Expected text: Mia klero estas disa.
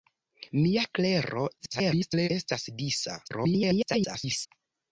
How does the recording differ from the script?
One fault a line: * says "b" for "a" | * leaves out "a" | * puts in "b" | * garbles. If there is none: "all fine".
* garbles
* garbles